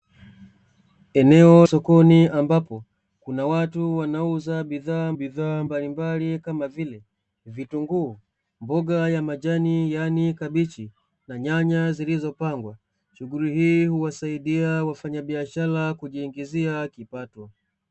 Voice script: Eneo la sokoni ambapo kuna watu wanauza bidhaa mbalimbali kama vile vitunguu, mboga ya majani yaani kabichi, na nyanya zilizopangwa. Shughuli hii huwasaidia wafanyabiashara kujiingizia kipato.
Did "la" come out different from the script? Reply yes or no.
yes